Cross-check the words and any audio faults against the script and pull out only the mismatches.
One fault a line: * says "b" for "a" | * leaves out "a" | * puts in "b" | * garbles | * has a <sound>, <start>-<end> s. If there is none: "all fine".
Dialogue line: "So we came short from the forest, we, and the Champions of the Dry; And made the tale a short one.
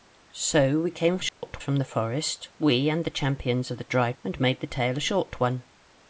* has a dropout, 1.3-1.4 s